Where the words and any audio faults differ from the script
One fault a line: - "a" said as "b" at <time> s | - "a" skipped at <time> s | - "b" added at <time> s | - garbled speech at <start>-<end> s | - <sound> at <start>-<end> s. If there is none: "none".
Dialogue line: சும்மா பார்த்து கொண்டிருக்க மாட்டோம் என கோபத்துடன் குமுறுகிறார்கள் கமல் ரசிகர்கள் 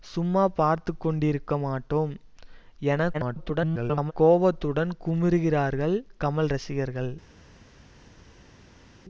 - garbled speech at 3.1-4.1 s